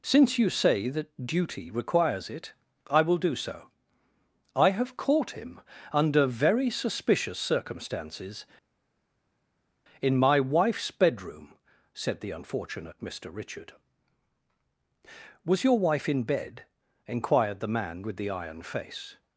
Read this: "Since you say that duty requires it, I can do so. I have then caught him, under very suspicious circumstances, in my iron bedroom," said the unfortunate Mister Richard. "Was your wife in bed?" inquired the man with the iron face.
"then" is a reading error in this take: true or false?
true